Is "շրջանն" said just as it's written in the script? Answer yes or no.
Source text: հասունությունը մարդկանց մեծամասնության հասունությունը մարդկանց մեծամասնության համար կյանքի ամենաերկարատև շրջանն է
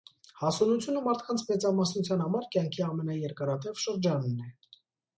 yes